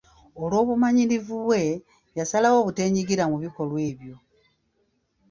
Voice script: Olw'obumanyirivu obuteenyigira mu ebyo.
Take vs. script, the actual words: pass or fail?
fail